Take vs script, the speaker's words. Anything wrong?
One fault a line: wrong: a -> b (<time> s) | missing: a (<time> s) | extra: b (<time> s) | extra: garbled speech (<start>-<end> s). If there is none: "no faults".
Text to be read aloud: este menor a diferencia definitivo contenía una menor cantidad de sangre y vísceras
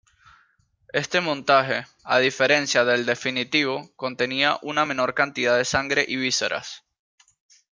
wrong: menor -> montaje (1.2 s)
extra: del (2.8 s)